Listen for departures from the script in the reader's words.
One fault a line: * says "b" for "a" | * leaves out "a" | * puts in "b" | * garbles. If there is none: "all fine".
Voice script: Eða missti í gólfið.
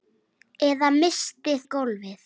all fine